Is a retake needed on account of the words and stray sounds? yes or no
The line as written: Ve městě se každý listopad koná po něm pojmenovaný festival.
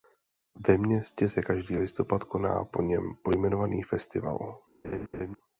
yes